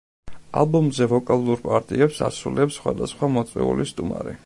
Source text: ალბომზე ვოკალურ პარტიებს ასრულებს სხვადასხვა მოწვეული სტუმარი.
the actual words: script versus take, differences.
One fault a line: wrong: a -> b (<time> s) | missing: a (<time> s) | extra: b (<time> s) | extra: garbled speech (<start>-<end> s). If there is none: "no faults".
no faults